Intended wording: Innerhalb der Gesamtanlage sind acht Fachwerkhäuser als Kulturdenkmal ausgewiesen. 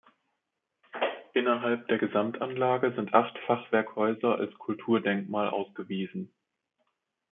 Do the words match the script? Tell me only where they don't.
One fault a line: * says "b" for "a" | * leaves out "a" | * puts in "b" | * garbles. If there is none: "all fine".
all fine